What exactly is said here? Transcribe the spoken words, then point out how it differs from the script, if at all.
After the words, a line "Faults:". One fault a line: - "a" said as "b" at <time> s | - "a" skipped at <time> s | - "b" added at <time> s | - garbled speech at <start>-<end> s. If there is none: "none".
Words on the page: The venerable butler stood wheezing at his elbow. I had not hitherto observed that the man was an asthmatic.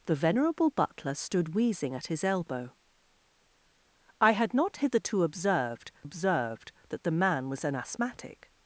The venerable butler stood wheezing at his elbow. I had not hitherto observed observed that the man was an asthmatic.
Faults:
- "observed" added at 6.0 s